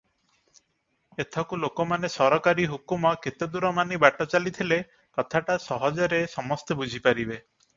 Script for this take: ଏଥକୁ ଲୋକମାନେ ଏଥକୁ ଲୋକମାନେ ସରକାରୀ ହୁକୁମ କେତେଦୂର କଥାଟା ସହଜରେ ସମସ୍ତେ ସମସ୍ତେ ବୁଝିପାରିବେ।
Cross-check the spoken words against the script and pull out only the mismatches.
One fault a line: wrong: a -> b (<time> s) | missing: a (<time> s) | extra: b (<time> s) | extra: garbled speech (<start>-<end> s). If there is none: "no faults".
missing: ଏଥକୁ ଲୋକମାନେ (2.1 s)
extra: ମାନି ବାଟ ଚାଲିଥିଲେ (3.8 s)
missing: ସମସ୍ତେ (6.8 s)